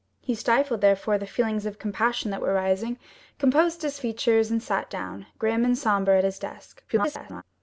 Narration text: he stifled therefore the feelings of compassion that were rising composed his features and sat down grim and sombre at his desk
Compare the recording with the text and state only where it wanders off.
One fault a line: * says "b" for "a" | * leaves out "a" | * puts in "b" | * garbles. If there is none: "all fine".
* garbles